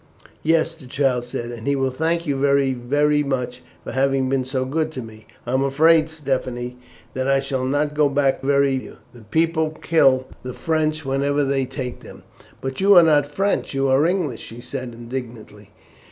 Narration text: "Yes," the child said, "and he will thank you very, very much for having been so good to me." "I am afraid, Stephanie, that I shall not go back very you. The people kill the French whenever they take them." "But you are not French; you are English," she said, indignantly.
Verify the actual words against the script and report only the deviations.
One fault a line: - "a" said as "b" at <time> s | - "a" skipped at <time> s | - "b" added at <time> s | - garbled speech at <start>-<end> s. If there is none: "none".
none